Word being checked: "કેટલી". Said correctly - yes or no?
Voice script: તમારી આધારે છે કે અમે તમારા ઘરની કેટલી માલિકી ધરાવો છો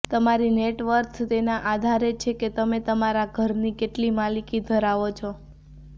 yes